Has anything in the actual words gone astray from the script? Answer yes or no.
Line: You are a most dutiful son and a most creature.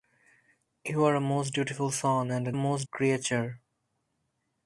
no